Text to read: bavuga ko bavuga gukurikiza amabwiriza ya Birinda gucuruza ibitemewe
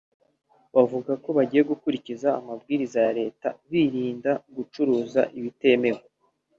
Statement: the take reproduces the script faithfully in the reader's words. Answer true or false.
false